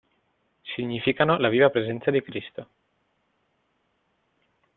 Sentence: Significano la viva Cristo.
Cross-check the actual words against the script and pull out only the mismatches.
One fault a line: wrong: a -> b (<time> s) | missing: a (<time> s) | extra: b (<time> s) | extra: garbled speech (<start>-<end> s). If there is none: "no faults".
extra: presenza di (1.7 s)